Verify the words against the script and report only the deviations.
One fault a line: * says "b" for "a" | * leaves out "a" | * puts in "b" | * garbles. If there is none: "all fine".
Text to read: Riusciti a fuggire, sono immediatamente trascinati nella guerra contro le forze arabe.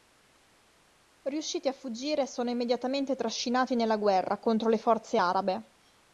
all fine